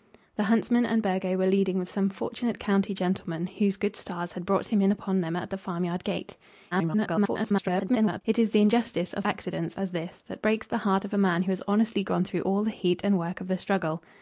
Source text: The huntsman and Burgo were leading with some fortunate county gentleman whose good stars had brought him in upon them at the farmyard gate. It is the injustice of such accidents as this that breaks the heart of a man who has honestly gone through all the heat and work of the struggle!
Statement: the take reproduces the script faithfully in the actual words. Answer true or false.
false